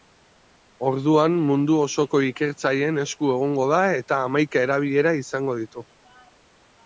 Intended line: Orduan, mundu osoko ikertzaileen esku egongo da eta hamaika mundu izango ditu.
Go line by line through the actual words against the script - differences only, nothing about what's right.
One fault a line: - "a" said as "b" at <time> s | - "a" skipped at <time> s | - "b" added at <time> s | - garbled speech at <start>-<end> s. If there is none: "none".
- "mundu" said as "erabilera" at 4.7 s